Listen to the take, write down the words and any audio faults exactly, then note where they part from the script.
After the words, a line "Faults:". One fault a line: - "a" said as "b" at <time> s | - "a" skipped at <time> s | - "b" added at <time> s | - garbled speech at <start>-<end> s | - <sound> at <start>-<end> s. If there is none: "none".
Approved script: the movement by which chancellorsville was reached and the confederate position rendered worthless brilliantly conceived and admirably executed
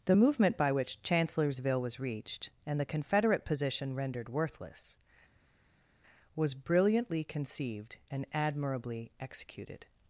the movement by which chancellorsville was reached and the confederate position rendered worthless was brilliantly conceived and admirably executed
Faults:
- "was" added at 6.3 s